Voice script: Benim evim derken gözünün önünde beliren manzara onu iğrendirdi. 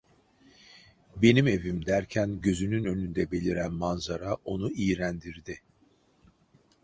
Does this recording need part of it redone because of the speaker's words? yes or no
no